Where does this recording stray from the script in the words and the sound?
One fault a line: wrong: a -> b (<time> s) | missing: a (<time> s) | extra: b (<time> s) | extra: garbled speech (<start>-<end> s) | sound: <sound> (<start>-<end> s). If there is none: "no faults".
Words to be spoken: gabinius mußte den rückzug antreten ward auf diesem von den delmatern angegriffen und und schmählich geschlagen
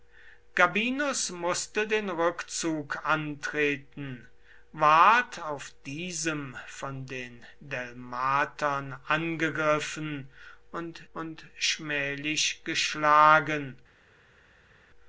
no faults